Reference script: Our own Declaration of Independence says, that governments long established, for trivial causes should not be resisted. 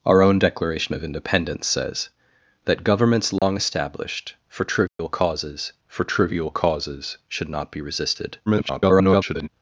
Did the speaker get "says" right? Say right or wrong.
right